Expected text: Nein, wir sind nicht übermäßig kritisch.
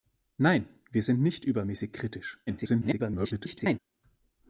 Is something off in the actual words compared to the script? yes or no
yes